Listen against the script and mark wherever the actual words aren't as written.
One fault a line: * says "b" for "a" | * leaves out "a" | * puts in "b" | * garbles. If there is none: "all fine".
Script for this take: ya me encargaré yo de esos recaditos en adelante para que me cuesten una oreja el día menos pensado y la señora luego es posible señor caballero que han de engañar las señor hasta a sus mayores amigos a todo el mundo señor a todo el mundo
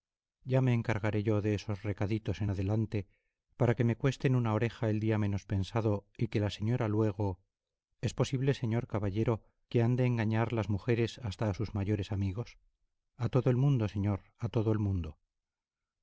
* puts in "que"
* says "mujeres" for "señor"